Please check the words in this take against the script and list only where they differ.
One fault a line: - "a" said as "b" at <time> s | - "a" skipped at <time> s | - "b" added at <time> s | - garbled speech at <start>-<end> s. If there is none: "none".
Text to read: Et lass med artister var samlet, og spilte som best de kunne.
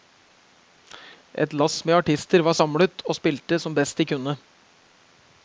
none